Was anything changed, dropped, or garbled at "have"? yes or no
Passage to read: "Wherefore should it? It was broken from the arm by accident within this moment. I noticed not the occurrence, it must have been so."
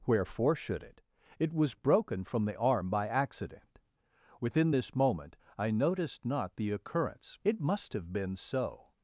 no